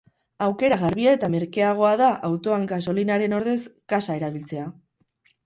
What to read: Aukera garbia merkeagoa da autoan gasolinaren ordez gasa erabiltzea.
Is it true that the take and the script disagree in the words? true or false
true